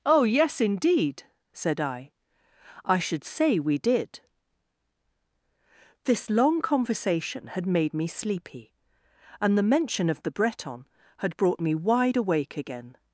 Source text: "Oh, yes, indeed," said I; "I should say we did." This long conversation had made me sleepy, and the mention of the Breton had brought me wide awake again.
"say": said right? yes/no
yes